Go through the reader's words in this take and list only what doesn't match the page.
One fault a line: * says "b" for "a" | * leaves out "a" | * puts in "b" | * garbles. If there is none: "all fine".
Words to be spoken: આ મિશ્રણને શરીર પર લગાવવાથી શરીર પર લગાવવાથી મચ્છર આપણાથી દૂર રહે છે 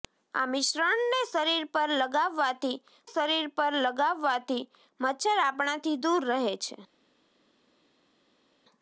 all fine